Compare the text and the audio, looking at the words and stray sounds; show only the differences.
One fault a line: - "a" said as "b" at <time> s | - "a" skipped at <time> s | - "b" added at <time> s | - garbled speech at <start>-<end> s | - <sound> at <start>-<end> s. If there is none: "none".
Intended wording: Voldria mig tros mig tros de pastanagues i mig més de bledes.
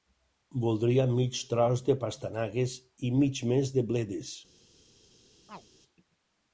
- "mig tros" skipped at 1.9 s
- chirp at 5.5-5.7 s